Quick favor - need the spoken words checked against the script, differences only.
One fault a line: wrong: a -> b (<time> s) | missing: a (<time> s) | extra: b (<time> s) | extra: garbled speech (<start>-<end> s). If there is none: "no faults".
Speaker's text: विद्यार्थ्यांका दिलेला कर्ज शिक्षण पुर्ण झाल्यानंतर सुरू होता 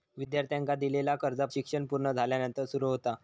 no faults